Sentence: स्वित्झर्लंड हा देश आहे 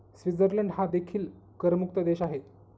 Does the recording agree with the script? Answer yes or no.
no